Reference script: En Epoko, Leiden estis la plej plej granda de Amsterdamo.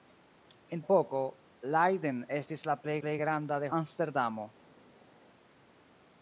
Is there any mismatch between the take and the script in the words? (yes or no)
no